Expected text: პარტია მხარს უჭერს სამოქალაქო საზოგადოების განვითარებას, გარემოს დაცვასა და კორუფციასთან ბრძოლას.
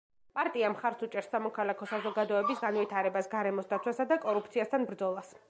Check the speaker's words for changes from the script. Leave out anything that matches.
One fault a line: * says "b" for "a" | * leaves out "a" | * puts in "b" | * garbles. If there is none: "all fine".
all fine